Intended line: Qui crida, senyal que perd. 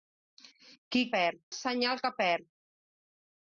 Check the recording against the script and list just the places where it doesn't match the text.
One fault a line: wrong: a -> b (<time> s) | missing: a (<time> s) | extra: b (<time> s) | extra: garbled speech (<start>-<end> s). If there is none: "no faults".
wrong: crida -> perd (1.2 s)